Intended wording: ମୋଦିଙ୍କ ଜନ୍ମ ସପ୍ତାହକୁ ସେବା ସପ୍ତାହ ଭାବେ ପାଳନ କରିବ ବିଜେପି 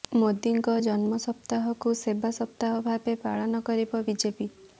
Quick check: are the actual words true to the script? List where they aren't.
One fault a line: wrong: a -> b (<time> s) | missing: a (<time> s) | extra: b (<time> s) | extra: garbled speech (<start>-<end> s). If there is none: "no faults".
no faults